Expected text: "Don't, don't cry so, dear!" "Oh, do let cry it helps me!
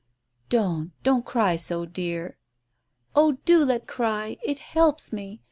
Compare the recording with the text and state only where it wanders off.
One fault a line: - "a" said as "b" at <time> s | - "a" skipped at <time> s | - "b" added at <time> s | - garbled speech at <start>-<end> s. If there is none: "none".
none